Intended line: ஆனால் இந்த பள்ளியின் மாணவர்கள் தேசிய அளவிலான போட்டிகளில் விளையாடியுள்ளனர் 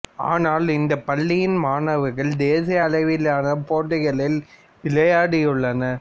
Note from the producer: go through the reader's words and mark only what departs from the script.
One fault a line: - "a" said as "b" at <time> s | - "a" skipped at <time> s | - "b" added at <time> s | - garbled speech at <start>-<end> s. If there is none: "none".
none